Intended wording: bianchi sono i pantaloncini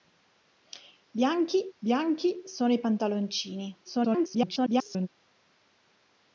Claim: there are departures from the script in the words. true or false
true